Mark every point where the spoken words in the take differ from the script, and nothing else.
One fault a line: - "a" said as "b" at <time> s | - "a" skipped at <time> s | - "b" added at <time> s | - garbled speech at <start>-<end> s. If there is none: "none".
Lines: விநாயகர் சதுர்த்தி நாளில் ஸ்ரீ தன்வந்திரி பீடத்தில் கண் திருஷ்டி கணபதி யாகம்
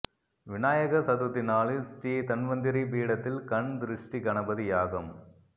none